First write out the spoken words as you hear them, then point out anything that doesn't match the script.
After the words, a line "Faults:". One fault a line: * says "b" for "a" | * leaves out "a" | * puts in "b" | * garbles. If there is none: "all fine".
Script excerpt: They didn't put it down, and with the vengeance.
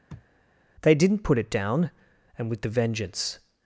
They didn't put it down, and with the vengeance.
Faults:
all fine